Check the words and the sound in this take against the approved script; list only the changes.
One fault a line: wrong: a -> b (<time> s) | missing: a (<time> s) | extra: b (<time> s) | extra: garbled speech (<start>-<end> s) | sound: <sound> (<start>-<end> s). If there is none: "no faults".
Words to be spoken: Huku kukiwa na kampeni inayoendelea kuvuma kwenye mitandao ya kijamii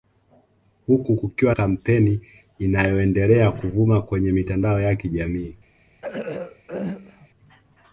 missing: na (1.5 s)
sound: throat clearing (6.0-7.3 s)